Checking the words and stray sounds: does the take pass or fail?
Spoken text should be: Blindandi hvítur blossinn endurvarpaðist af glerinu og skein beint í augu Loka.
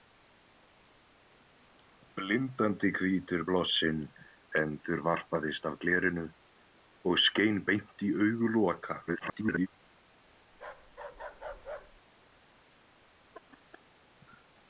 fail